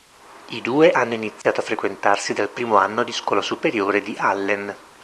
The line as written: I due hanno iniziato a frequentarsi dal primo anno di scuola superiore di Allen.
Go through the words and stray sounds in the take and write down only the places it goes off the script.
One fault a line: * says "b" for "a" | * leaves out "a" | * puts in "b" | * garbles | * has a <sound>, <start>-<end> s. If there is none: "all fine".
* has a dropout, 1.4-1.4 s